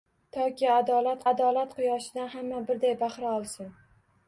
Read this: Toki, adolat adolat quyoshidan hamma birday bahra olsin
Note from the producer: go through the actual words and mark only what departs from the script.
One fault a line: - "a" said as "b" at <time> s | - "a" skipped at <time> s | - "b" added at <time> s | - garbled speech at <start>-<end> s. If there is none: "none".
none